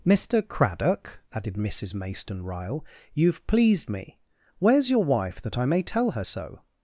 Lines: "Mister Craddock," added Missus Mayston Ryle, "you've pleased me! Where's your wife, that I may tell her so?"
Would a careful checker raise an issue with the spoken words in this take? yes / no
no